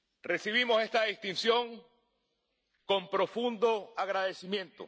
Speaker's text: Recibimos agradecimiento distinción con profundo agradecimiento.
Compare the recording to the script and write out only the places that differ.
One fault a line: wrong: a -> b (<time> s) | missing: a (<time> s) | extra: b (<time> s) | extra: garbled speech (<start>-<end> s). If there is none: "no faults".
wrong: agradecimiento -> esta (0.8 s)